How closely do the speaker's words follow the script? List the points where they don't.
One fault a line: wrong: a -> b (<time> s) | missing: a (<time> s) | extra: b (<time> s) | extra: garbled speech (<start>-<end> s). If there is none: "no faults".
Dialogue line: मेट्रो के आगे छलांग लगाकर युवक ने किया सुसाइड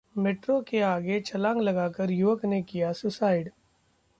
no faults